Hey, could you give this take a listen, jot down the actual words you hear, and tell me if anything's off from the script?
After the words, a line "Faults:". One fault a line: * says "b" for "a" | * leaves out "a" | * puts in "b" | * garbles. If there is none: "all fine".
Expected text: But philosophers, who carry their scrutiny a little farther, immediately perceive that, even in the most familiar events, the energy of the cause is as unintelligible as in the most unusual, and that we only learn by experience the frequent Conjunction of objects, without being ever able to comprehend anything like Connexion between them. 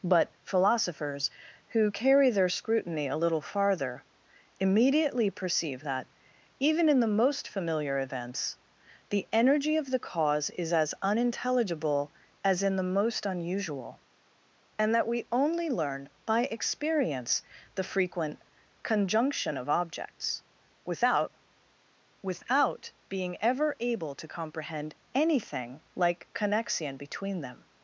But philosophers, who carry their scrutiny a little farther, immediately perceive that, even in the most familiar events, the energy of the cause is as unintelligible as in the most unusual, and that we only learn by experience the frequent Conjunction of objects, without without being ever able to comprehend anything like Connexion between them.
Faults:
* puts in "without"